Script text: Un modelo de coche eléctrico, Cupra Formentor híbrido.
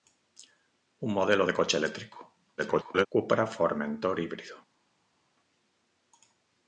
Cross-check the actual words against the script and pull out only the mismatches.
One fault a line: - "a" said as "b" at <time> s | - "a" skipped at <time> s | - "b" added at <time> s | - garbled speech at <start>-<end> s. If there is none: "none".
- garbled speech at 2.6-3.1 s